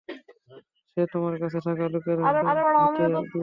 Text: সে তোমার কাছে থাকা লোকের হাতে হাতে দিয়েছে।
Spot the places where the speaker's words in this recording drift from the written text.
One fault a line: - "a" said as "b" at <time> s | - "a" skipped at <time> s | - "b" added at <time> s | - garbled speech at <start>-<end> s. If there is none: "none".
none